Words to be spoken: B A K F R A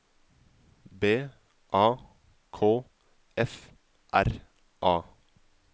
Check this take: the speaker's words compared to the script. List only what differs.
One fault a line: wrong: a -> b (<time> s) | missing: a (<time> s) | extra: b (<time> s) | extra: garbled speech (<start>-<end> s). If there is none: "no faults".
no faults